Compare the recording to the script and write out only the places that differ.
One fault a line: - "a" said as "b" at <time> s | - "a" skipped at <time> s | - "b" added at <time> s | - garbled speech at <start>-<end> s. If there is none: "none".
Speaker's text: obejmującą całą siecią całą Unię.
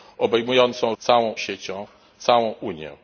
none